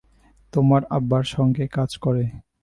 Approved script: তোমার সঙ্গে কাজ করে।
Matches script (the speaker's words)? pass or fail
fail